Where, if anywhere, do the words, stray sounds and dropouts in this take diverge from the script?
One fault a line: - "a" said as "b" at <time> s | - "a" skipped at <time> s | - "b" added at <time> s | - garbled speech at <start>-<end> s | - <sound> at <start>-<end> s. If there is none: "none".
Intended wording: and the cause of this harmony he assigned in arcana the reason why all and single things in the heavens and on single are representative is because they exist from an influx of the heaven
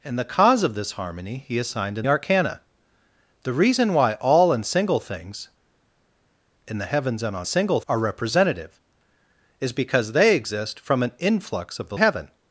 none